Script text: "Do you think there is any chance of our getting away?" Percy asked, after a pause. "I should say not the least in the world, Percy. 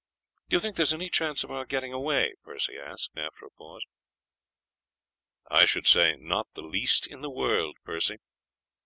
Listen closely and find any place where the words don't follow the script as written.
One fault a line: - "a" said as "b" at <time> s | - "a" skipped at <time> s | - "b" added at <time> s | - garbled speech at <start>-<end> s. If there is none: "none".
none